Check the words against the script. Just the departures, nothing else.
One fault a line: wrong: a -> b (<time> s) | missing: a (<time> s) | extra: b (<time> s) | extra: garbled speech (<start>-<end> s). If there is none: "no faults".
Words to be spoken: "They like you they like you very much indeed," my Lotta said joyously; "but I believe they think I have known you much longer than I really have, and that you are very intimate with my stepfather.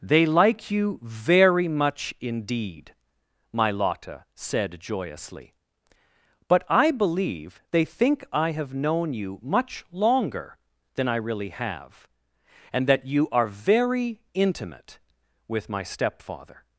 missing: they like you (1.0 s)